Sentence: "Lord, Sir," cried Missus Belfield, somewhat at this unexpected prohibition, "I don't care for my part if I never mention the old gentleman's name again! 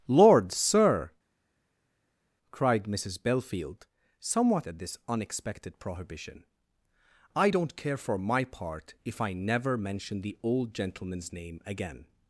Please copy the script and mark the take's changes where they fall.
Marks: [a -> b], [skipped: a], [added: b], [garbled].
"Lord, Sir," cried Missus Belfield, somewhat at this unexpected prohibition, "I don't care for my part if I never mention the old gentleman's name again!